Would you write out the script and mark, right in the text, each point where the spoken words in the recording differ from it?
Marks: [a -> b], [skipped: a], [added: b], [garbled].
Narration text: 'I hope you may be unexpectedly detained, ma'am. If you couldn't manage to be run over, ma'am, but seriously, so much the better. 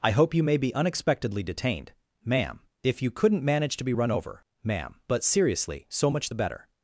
'I hope you may be unexpectedly detained, ma'am. If you couldn't manage to be run over, ma'am, but seriously, so much the better.